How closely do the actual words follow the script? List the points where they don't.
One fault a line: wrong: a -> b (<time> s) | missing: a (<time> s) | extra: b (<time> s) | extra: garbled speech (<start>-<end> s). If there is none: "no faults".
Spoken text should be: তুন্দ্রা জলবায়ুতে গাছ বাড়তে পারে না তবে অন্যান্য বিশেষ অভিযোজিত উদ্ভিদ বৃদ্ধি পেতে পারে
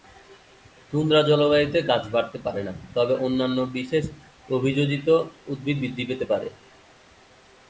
no faults